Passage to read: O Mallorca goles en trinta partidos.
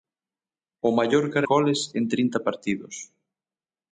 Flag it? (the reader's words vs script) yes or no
no